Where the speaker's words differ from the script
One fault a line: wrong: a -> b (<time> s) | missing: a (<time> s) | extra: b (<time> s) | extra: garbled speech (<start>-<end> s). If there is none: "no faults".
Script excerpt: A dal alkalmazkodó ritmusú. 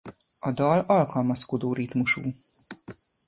no faults